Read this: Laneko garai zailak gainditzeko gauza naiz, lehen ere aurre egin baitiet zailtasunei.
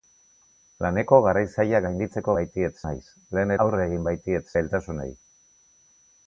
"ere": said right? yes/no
no